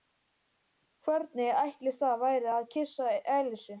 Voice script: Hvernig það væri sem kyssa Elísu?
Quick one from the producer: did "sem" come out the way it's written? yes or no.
no